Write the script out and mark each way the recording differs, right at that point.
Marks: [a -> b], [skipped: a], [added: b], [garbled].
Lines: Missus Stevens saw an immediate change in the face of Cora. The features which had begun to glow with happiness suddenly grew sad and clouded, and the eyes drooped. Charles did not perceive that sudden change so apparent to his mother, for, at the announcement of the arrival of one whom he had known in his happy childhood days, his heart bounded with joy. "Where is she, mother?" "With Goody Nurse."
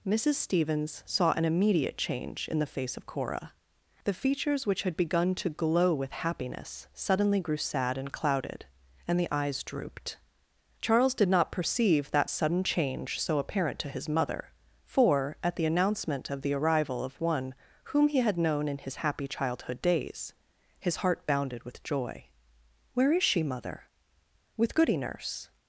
Missus Stevens saw an immediate change in the face of Cora. The features which had begun to glow with happiness suddenly grew sad and clouded, and the eyes drooped. Charles did not perceive that sudden change so apparent to his mother, for, at the announcement of the arrival of one whom he had known in his happy childhood days, his heart bounded with joy. "Where is she, mother?" "With Goody Nurse."